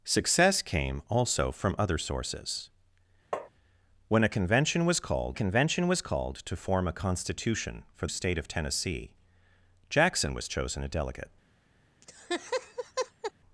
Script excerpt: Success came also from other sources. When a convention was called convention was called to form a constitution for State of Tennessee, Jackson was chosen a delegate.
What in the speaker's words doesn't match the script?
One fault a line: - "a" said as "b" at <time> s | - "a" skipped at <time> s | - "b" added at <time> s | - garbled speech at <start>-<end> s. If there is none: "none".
none